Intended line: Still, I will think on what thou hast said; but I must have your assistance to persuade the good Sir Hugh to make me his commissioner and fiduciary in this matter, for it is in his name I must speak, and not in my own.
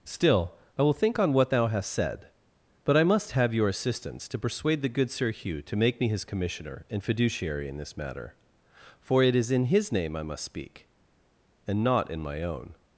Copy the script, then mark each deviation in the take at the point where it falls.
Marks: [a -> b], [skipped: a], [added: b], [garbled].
Still, I will think on what thou hast said; but I must have your assistance to persuade the good Sir Hugh to make me his commissioner and fiduciary in this matter, for it is in his name I must speak, and not in my own.